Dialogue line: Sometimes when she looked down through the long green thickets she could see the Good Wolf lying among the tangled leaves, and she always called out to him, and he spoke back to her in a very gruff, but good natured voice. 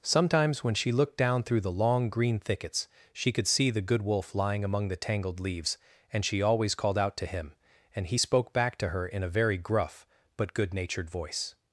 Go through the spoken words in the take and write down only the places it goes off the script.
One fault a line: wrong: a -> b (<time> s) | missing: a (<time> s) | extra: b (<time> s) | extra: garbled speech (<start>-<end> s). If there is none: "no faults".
no faults